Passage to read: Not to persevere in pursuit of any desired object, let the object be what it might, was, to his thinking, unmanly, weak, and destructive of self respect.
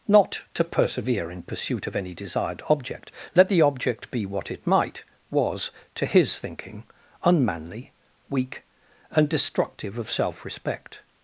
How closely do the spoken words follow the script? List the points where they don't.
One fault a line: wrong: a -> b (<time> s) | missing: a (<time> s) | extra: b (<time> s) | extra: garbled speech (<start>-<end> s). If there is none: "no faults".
no faults